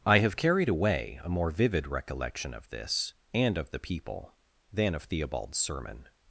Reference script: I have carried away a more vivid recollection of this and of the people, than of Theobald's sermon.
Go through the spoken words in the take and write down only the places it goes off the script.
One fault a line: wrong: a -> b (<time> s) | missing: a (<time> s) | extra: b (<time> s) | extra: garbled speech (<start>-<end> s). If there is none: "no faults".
no faults